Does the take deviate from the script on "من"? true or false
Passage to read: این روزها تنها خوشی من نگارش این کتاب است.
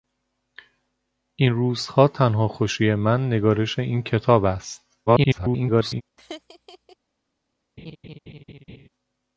false